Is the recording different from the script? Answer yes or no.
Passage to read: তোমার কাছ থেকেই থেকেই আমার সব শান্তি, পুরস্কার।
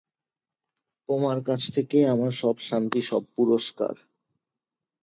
yes